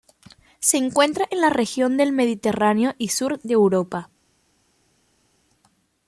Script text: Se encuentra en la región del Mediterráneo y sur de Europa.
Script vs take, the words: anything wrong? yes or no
no